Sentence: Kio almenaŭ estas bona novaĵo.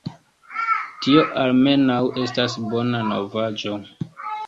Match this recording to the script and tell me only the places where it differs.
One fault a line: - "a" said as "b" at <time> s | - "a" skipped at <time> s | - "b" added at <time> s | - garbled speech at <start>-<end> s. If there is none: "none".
- "Kio" said as "Tio" at 1.0 s